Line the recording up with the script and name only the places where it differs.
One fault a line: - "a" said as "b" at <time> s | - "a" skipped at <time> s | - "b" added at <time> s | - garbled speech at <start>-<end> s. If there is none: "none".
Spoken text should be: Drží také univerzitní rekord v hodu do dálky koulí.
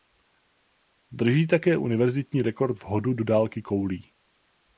none